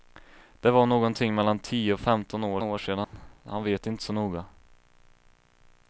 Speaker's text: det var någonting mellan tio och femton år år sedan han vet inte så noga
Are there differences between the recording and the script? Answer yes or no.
no